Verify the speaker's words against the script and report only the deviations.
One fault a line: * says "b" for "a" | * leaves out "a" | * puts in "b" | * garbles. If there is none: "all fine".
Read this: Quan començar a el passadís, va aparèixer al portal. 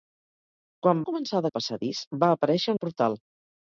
all fine